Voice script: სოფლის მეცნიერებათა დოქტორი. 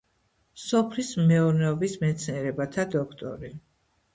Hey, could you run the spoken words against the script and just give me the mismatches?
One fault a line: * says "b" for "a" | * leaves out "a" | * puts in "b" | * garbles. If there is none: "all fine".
* puts in "მეურნეობის"